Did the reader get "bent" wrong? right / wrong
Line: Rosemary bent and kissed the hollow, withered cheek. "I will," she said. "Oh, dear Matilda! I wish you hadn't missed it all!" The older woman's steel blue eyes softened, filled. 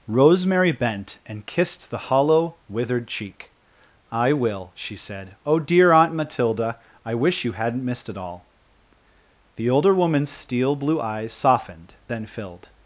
right